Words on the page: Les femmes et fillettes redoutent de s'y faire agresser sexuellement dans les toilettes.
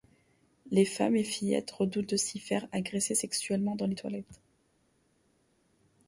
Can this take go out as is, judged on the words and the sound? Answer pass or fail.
pass